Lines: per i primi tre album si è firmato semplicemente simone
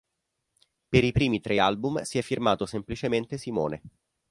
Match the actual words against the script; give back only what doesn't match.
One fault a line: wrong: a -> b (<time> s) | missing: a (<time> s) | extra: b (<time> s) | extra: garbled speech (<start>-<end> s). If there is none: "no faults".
no faults